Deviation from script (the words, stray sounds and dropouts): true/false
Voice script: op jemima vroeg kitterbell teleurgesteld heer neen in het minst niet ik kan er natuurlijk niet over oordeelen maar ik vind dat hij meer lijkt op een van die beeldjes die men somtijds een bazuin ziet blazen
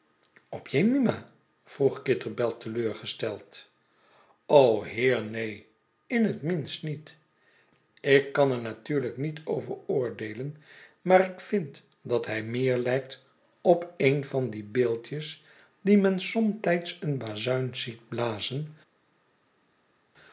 false